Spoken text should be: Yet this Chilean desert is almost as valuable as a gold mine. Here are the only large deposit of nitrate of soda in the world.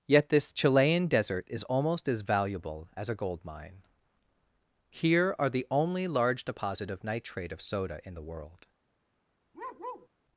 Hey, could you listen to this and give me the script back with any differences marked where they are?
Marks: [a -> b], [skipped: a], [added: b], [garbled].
Yet this Chilean desert is almost as valuable as a gold mine. Here are the only large deposit of nitrate of soda in the world.